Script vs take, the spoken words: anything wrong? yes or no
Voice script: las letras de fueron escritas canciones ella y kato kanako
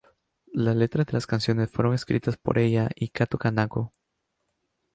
yes